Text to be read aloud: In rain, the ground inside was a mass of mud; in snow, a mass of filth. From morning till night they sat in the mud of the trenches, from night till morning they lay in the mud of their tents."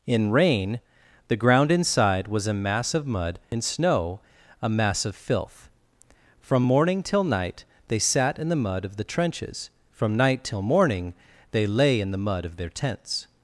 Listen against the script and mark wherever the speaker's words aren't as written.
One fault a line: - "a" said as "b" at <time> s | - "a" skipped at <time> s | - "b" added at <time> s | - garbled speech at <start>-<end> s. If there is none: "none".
none